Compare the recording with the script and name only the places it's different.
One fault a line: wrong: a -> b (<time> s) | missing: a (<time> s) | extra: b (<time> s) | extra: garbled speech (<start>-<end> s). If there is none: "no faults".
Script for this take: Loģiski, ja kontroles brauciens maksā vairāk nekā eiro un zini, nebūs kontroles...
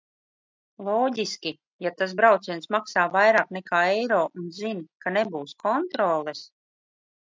wrong: kontroles -> tas (2.0 s)
extra: ka (5.0 s)